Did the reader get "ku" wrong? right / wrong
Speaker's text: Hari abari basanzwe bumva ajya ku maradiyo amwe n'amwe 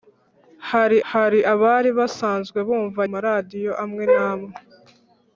wrong